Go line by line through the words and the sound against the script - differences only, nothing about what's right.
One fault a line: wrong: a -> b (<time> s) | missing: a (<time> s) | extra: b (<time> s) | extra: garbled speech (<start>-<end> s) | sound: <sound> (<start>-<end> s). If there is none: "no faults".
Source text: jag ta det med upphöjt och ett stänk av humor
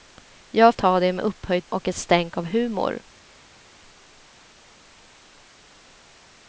no faults